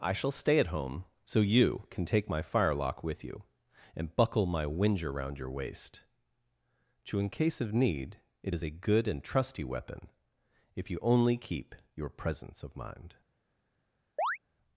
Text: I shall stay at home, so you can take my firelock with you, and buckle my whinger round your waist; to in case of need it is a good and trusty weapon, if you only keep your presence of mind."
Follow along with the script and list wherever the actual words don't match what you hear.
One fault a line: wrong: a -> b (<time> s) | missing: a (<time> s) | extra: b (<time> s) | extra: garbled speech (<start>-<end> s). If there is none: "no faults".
no faults